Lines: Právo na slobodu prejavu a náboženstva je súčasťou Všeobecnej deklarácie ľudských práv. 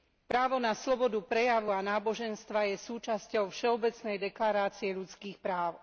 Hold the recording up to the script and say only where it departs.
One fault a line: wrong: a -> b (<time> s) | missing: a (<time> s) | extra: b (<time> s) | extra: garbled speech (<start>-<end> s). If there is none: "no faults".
no faults